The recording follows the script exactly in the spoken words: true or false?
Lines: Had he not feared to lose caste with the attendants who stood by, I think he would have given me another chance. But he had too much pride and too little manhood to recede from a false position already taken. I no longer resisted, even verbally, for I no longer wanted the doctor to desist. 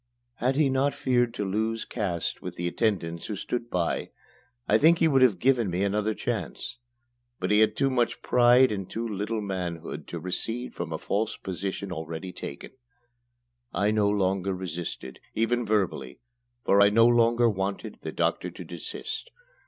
true